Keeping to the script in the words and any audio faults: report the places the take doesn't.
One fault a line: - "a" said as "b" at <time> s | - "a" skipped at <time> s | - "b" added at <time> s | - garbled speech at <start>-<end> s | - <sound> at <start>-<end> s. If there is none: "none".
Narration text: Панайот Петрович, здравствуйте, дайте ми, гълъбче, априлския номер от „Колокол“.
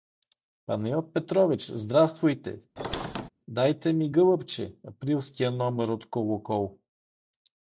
- squeak at 2.8-3.3 s